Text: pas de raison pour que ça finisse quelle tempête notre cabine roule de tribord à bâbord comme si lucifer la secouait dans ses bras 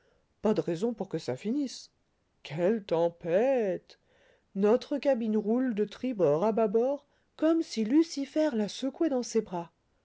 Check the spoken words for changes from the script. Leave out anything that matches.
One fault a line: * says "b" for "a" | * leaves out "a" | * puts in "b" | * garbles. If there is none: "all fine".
all fine